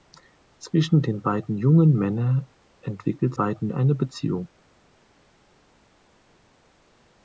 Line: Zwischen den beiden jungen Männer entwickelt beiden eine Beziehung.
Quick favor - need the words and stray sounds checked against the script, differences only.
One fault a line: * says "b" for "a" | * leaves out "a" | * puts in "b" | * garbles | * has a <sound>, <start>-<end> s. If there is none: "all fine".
all fine